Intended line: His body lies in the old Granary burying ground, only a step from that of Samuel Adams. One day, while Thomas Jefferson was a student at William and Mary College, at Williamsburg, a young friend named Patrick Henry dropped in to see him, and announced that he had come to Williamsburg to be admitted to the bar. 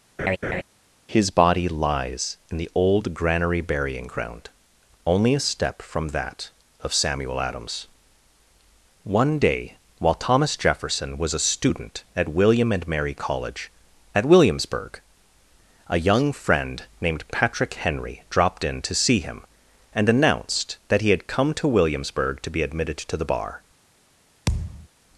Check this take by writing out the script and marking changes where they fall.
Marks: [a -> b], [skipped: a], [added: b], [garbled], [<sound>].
[laugh] His body lies in the old Granary burying ground, only a step from that of Samuel Adams. One day, while Thomas Jefferson was a student at William and Mary College, at Williamsburg, a young friend named Patrick Henry dropped in to see him, and announced that he had come to Williamsburg to be admitted to the bar. [thud]